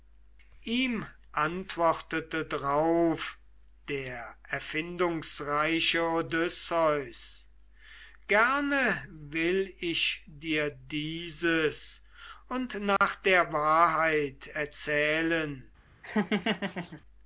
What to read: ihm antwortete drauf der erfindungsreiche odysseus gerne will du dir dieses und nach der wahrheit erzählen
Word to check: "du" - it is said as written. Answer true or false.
false